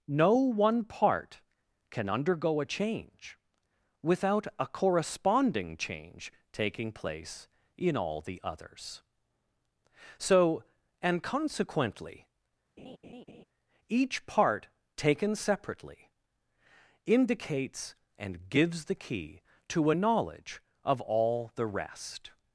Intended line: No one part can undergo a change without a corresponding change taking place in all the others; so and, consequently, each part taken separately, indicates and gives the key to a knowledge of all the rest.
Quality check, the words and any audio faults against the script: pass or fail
fail